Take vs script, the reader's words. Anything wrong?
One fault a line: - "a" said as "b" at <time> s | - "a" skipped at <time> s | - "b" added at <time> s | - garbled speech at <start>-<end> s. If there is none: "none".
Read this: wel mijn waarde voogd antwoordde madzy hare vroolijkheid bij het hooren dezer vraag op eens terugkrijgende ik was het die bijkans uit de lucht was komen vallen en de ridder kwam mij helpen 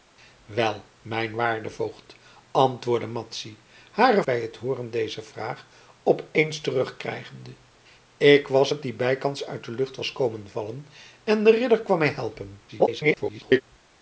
- "vroolijkheid" skipped at 4.2 s
- garbled speech at 12.7-13.6 s